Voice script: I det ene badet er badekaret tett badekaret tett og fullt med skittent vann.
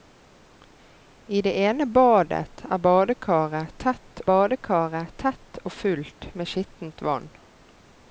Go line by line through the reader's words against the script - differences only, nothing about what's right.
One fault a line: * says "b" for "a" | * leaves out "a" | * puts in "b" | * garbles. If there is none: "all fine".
all fine